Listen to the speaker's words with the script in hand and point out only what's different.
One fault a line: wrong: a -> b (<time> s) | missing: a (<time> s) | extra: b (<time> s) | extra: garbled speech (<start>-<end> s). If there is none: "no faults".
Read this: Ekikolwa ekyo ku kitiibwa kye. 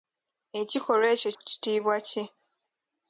no faults